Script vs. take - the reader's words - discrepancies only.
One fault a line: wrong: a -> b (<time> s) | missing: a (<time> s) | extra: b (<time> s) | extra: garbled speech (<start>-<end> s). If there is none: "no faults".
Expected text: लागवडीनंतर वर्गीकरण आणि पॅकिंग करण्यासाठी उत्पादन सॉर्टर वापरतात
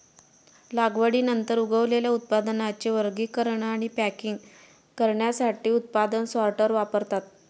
extra: उगवलेल्या उत्पादनांचे (1.6 s)